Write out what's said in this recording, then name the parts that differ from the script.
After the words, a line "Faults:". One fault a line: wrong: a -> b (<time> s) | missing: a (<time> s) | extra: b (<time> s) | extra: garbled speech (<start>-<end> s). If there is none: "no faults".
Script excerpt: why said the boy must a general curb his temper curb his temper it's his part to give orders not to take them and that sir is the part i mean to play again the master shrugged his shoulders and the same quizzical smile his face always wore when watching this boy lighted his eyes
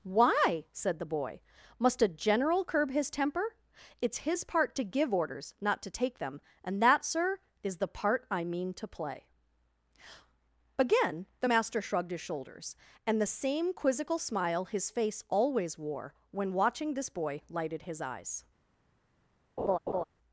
why said the boy must a general curb his temper it's his part to give orders not to take them and that sir is the part i mean to play again the master shrugged his shoulders and the same quizzical smile his face always wore when watching this boy lighted his eyes
Faults:
missing: curb his temper (3.5 s)